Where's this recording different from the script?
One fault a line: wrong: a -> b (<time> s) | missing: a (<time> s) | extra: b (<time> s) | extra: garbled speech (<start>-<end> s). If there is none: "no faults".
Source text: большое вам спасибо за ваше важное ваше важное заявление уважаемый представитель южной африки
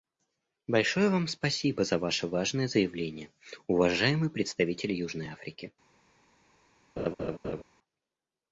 missing: ваше важное (2.7 s)